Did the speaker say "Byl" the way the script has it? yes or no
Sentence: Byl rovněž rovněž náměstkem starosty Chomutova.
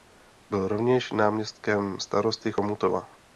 yes